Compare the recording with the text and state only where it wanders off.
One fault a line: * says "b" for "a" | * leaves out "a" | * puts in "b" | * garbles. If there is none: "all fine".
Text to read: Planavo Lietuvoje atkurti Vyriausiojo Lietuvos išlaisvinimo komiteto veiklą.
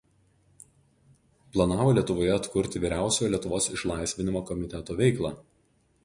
all fine